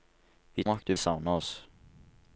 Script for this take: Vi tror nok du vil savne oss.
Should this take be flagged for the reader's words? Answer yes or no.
yes